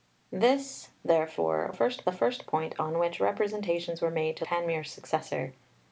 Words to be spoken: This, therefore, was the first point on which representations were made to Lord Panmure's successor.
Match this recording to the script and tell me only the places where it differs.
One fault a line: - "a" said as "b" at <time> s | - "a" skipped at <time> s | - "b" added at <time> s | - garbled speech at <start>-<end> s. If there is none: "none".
- "was" said as "first" at 1.7 s
- "Lord" skipped at 4.4 s